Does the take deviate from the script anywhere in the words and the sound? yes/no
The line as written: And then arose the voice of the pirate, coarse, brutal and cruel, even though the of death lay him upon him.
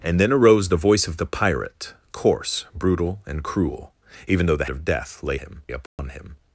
yes